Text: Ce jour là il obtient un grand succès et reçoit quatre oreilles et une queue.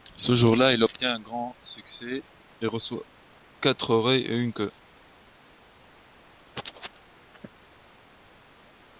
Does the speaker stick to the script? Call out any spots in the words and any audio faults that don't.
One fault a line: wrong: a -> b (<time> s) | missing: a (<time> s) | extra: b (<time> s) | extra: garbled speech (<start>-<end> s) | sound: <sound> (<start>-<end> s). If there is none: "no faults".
no faults